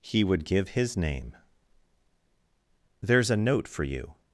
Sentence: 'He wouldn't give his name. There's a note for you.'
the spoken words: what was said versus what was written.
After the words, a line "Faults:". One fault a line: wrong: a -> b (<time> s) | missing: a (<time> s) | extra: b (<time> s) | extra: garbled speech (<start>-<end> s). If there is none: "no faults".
'He would give his name. There's a note for you.'
Faults:
wrong: wouldn't -> would (0.2 s)